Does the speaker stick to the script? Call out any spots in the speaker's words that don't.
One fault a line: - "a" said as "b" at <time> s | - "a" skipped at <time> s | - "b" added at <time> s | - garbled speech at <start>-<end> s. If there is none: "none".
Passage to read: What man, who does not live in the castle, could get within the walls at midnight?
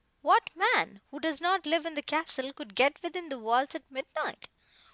none